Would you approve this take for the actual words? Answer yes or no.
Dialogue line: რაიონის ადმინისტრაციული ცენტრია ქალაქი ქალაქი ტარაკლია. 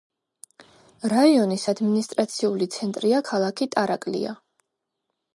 no